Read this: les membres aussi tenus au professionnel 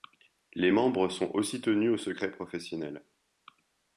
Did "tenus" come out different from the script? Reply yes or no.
no